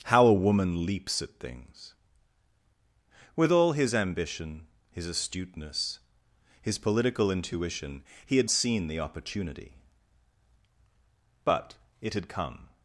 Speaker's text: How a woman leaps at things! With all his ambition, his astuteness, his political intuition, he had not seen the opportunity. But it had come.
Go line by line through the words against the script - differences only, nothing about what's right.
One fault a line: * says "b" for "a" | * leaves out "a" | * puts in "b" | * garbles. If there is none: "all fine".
* leaves out "not"